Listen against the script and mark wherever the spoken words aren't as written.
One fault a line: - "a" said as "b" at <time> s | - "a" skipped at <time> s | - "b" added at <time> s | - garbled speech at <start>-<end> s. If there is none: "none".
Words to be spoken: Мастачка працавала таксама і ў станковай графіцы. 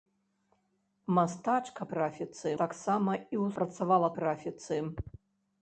- "працавала" said as "графіцы" at 1.9 s
- "станковай" said as "працавала" at 3.6 s